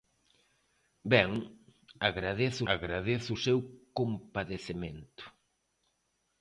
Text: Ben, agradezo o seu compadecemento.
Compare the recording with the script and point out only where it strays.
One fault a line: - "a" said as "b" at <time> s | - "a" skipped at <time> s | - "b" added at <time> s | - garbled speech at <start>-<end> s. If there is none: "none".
- "agradezo" added at 2.7 s